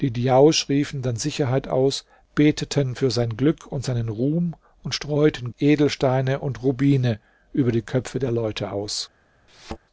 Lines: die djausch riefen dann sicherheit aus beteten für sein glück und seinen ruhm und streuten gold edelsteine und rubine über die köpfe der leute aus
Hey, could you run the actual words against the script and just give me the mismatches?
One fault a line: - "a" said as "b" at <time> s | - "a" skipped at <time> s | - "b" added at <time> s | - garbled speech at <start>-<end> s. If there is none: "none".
- "gold" skipped at 5.5 s